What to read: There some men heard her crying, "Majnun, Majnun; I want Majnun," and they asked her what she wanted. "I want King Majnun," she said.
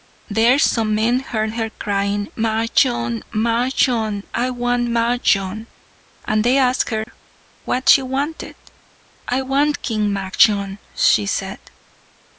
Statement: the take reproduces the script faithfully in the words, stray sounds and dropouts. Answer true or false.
false